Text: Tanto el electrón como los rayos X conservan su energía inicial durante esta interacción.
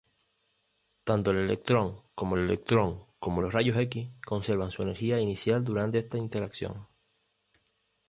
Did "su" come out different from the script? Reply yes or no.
no